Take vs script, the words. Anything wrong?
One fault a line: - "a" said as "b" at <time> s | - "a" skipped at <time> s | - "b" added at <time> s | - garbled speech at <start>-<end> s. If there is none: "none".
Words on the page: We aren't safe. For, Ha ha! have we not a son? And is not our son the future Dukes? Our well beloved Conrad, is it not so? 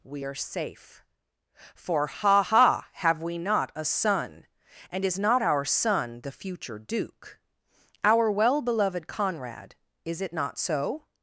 - "aren't" said as "are" at 0.2 s
- "Dukes" said as "Duke" at 6.8 s